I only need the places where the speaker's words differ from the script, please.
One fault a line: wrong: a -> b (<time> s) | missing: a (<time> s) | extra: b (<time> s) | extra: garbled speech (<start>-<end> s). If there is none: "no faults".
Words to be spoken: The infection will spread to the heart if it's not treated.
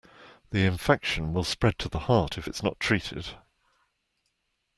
no faults